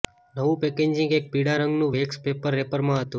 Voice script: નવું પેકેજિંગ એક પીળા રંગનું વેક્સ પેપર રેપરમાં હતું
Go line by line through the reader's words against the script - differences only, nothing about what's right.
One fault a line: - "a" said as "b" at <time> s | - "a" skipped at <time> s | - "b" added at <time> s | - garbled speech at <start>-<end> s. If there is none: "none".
none